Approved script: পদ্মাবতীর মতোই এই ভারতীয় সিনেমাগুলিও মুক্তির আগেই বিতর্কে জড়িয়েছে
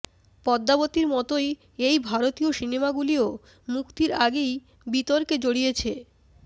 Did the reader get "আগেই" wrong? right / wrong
right